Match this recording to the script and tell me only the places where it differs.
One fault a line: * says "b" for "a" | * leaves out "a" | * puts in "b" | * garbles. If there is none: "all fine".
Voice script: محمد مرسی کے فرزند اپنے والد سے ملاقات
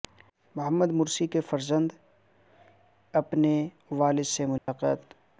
all fine